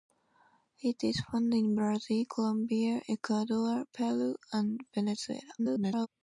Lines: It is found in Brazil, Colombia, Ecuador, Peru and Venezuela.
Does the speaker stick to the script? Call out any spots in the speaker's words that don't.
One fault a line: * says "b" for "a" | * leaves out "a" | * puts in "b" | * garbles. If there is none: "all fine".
* garbles